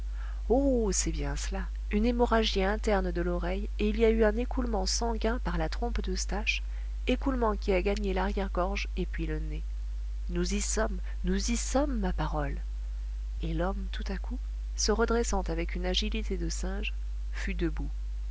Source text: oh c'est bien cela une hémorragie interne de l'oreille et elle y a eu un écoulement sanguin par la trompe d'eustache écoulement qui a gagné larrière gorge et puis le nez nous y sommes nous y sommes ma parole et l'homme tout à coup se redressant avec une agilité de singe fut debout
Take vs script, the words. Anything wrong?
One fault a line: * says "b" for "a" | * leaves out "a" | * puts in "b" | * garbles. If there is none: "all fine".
* says "il" for "elle"